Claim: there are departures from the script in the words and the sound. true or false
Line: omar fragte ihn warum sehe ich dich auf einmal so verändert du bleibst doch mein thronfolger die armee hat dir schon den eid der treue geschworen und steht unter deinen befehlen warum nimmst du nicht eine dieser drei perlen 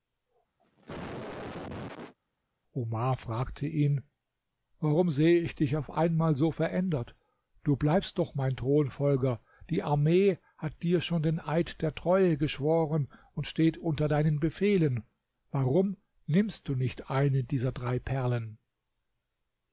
true